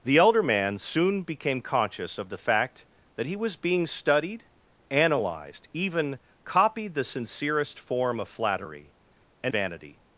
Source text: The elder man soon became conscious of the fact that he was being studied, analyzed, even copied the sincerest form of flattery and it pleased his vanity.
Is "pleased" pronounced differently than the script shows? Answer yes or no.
yes